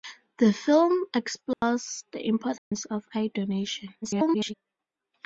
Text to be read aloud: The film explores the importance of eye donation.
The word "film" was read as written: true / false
true